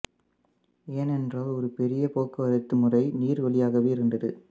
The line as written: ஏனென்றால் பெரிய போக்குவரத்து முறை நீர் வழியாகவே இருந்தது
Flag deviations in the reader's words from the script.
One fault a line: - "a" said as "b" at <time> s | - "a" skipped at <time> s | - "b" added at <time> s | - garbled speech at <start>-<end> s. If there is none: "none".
- "ஒரு" added at 1.5 s